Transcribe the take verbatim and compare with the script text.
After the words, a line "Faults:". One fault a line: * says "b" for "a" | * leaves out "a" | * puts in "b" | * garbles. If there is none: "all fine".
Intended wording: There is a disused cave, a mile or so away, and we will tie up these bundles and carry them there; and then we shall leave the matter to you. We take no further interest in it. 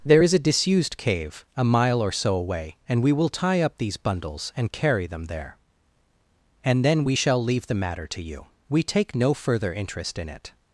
There is a disused cave, a mile or so away, and we will tie up these bundles and carry them there; and then we shall leave the matter to you. We take no further interest in it.
Faults:
all fine